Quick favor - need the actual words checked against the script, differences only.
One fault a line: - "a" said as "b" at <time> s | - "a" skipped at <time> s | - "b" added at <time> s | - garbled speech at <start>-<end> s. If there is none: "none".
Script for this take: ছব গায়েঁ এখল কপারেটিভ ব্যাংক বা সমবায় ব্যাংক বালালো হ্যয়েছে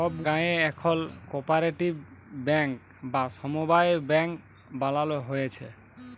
none